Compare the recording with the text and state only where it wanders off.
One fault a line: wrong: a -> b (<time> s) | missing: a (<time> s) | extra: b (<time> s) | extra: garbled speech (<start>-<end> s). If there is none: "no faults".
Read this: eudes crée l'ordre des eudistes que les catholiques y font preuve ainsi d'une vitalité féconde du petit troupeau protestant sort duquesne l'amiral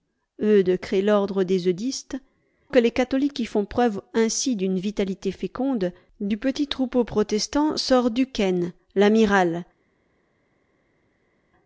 no faults